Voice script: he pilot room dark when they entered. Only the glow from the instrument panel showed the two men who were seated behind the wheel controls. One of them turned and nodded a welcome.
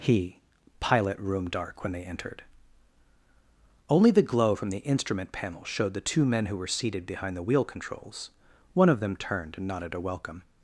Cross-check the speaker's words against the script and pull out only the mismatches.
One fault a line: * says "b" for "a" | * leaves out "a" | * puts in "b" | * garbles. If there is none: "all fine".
all fine